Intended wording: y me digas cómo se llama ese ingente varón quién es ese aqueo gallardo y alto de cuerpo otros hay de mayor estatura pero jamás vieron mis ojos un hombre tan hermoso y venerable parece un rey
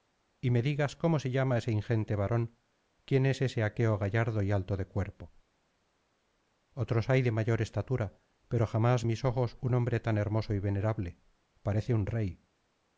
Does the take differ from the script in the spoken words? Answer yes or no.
yes